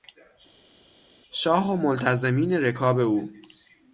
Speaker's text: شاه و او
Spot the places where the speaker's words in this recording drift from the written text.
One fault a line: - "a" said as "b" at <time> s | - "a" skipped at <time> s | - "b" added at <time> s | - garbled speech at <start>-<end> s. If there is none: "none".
- "ملتزمین رکاب" added at 1.8 s